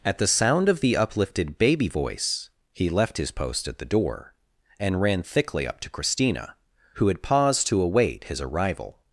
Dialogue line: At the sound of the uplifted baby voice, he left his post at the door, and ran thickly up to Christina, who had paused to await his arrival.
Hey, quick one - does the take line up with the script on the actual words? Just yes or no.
yes